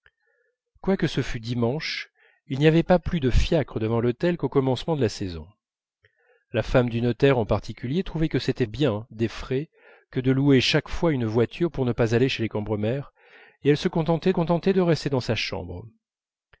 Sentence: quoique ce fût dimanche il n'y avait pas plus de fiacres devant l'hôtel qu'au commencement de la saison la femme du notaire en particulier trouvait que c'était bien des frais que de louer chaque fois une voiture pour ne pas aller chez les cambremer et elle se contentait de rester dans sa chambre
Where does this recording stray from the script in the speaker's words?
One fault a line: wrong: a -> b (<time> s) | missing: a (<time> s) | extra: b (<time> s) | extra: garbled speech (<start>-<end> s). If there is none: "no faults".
extra: contentait (14.3 s)